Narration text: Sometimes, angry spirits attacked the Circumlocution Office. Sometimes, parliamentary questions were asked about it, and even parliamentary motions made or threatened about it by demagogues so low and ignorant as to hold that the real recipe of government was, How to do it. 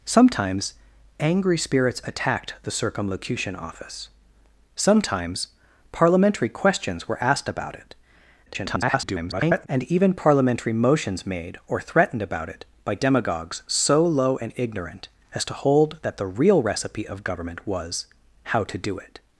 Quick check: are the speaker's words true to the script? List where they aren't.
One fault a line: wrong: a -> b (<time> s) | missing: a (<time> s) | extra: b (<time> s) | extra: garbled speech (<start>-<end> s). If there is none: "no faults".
extra: garbled speech (8.5-9.7 s)